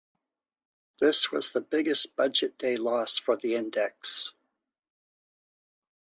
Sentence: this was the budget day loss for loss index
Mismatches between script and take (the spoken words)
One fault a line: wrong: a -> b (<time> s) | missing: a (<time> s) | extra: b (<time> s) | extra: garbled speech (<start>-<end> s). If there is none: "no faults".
extra: biggest (1.6 s)
wrong: loss -> the (3.4 s)